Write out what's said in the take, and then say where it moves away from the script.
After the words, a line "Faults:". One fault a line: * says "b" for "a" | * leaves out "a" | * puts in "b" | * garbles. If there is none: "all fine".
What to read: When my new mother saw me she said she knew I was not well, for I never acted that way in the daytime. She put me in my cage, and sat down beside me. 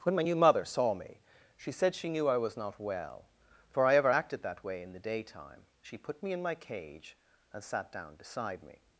When my new mother saw me she said she knew I was not well, for I ever acted that way in the daytime. She put me in my cage, and sat down beside me.
Faults:
* says "ever" for "never"